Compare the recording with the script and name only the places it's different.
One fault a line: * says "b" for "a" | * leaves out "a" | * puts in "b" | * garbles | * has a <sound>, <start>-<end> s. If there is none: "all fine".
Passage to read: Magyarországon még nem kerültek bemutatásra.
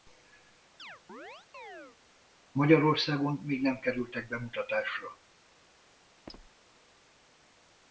* has a chirp, 0.8-2.0 s
* has a squeak, 6.3-6.5 s